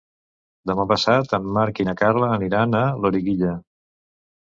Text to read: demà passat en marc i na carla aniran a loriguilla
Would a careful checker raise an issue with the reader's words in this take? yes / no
no